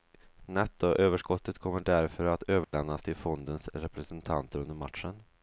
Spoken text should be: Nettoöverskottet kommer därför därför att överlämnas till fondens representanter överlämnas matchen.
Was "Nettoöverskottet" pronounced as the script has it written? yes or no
yes